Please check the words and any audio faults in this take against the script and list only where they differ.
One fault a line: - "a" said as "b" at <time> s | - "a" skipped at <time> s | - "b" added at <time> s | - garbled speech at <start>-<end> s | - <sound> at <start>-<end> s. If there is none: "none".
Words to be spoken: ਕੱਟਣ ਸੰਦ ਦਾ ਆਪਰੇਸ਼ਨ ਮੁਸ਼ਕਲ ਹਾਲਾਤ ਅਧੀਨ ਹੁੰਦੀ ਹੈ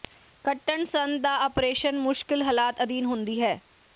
none